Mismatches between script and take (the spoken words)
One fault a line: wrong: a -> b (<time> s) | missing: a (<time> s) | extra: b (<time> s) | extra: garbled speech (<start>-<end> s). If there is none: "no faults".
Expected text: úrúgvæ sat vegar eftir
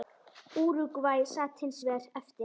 extra: hins (1.6 s)